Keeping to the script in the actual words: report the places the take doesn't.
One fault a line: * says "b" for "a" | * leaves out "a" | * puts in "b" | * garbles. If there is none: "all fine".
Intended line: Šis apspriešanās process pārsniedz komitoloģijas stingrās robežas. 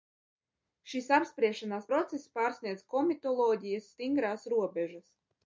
all fine